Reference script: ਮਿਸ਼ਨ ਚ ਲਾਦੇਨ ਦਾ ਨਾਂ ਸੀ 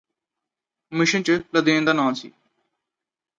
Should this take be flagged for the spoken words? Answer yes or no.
no